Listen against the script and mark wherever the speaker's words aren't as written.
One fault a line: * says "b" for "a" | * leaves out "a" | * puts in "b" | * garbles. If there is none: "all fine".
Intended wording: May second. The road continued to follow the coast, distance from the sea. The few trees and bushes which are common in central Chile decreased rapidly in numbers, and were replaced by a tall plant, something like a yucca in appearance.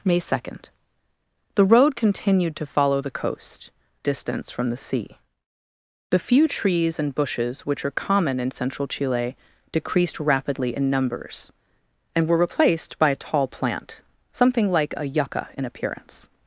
all fine